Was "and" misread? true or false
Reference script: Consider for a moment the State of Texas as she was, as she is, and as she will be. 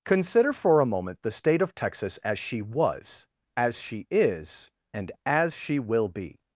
false